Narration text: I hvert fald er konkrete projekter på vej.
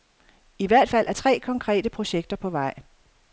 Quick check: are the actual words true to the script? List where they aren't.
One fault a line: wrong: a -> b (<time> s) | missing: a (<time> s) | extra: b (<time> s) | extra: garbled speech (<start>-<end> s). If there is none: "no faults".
extra: tre (1.1 s)